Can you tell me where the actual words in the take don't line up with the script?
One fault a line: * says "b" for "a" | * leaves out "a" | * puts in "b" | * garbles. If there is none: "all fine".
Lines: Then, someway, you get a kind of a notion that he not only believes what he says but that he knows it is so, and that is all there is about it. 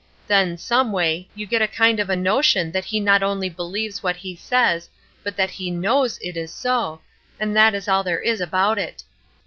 all fine